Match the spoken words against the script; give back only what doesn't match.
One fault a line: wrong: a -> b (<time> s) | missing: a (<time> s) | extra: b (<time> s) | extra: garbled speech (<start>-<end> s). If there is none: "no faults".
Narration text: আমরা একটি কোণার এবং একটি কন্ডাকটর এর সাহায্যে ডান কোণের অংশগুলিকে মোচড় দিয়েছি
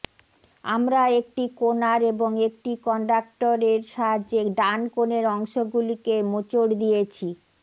no faults